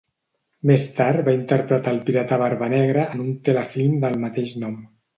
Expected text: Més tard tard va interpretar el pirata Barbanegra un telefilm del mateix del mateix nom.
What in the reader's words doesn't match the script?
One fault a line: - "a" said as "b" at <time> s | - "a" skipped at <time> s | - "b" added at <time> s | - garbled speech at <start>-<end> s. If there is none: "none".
- "tard" skipped at 1.2 s
- "en" added at 3.2 s
- "del mateix" skipped at 4.6 s